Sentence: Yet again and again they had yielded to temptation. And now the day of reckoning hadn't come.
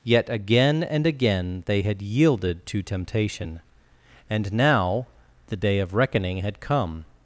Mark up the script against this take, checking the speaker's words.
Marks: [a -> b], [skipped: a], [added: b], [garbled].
Yet again and again they had yielded to temptation. And now the day of reckoning [hadn't -> had] come.